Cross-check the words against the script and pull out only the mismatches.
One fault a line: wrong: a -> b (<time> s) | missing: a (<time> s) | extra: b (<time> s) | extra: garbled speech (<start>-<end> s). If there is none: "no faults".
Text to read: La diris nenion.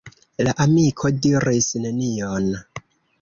extra: amiko (0.7 s)